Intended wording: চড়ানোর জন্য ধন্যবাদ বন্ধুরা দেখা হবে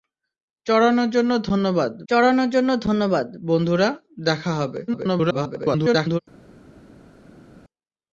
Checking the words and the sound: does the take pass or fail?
fail